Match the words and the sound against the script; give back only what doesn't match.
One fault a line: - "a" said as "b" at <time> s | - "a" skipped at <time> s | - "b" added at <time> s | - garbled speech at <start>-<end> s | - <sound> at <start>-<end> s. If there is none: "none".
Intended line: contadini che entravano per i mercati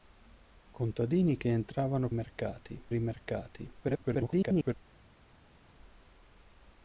- "per" said as "mercati" at 2.1 s
- garbled speech at 3.8-4.7 s